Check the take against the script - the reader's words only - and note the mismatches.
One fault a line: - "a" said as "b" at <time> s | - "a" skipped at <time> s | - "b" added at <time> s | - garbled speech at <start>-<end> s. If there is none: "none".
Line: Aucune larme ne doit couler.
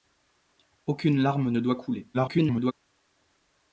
- garbled speech at 2.1-2.7 s